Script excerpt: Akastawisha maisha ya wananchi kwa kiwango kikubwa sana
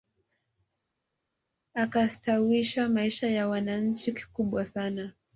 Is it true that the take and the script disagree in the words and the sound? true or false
true